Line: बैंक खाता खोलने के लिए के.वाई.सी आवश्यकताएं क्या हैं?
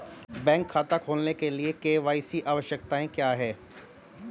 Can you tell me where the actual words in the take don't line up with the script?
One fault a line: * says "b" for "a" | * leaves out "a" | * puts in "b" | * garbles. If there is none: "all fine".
all fine